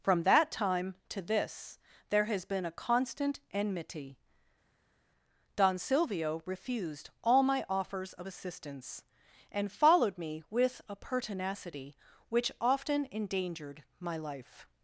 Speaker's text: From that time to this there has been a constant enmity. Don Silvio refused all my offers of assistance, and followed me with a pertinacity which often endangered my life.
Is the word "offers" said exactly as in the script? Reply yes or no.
yes